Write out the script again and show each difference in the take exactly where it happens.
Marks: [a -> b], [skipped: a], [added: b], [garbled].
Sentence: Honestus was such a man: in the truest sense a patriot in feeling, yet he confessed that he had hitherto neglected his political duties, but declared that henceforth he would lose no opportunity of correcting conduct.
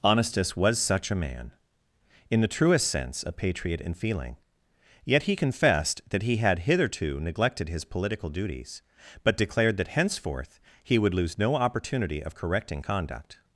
Honestus was such a man: in the truest sense a patriot in feeling, yet he confessed that he had hitherto neglected his political duties, but declared that henceforth he would lose no opportunity of correcting conduct.